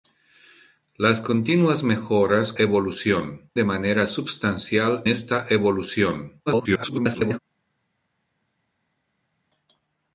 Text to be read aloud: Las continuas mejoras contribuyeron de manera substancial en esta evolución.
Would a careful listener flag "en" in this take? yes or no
yes